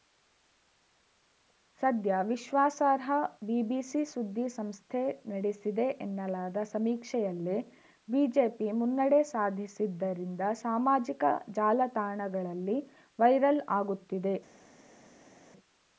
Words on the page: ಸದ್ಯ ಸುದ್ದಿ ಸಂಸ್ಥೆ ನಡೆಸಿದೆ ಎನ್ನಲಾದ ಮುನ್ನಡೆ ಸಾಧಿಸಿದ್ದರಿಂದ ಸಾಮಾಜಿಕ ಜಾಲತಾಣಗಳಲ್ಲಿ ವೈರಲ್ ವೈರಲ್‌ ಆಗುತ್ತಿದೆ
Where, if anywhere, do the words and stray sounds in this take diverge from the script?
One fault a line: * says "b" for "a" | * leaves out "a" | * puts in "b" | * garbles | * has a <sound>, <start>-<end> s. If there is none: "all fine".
* puts in "ವಿಶ್ವಾಸಾರ್ಹ ಬಿಬಿಸಿ"
* puts in "ಸಮೀಕ್ಷೆಯಲ್ಲೇ ಬಿಜೆಪಿ"
* leaves out "ವೈರಲ್"